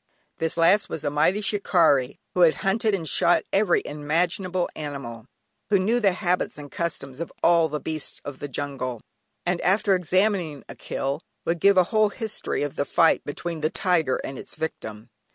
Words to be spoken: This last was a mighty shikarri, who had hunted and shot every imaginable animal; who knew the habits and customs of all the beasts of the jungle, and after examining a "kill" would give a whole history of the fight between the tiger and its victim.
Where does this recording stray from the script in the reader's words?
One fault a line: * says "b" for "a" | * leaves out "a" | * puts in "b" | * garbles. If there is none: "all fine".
all fine